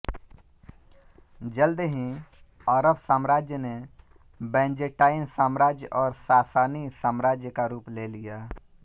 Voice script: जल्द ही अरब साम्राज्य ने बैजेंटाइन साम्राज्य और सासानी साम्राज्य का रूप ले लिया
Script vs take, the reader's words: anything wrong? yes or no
no